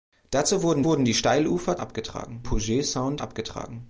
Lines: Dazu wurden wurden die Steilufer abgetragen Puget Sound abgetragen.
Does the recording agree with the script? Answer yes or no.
yes